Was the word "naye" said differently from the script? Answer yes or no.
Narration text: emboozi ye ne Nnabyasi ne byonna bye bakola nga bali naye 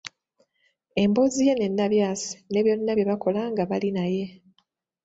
no